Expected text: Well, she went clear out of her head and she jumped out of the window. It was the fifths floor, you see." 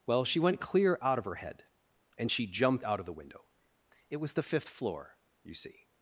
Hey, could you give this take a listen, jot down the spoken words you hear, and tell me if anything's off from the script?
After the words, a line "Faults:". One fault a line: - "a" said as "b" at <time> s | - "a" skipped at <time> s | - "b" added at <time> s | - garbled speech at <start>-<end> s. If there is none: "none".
Well, she went clear out of her head and she jumped out of the window. It was the fifth floor, you see."
Faults:
- "fifths" said as "fifth" at 4.4 s